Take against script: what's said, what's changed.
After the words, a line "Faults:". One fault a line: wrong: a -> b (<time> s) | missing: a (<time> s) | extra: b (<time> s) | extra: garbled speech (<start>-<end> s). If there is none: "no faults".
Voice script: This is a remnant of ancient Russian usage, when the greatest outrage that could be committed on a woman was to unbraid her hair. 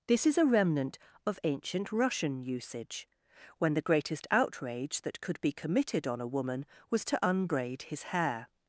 This is a remnant of ancient Russian usage, when the greatest outrage that could be committed on a woman was to unbraid his hair.
Faults:
wrong: her -> his (7.8 s)